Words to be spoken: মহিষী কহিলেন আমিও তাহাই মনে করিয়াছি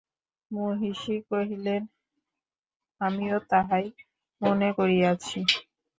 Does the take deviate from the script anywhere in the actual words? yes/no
no